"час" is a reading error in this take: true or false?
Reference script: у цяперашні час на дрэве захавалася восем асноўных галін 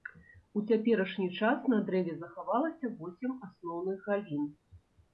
false